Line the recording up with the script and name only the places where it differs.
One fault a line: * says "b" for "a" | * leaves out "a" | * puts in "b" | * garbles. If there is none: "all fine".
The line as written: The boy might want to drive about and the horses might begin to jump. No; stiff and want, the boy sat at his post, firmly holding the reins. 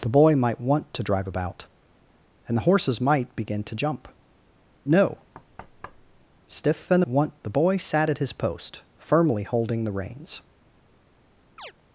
all fine